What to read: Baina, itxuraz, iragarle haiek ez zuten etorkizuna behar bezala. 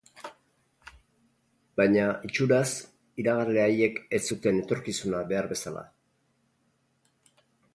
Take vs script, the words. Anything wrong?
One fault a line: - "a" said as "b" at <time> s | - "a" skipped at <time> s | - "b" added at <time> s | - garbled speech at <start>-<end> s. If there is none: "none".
none